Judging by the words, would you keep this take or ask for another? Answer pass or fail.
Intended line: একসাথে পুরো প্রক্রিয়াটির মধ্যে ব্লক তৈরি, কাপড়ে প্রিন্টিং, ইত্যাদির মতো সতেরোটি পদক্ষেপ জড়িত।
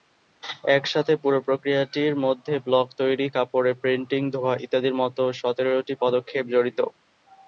fail